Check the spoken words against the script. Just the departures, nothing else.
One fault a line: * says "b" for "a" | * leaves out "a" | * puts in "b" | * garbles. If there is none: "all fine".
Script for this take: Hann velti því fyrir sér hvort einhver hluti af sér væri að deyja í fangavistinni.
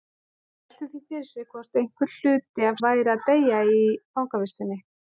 * leaves out "sér"